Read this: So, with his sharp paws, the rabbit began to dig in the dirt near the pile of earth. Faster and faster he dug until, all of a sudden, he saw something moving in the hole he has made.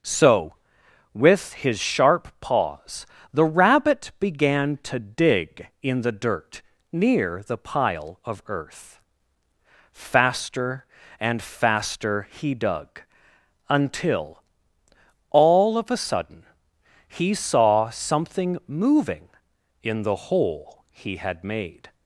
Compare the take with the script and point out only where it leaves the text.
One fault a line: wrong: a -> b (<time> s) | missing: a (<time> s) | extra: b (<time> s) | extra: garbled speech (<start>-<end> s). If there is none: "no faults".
wrong: has -> had (21.2 s)